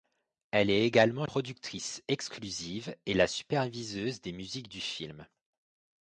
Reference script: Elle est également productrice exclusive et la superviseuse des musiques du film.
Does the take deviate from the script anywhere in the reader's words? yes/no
no